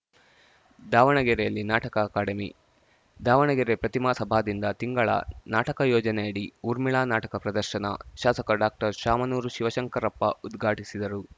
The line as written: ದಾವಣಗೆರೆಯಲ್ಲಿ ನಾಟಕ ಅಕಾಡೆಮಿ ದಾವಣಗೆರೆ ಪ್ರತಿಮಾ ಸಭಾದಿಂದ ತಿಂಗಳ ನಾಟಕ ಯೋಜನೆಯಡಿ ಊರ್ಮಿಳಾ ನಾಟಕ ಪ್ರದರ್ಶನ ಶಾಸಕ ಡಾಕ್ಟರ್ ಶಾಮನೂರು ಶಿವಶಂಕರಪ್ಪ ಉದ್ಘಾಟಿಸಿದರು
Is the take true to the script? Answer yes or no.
yes